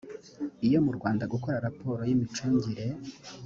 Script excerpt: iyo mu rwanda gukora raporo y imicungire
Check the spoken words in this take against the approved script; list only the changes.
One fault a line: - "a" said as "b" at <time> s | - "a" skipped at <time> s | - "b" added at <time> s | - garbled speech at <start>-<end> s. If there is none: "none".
none